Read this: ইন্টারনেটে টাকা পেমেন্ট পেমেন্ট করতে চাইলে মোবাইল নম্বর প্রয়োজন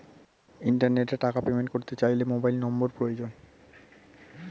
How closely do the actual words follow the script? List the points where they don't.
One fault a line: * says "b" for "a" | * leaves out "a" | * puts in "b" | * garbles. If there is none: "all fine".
* leaves out "পেমেন্ট"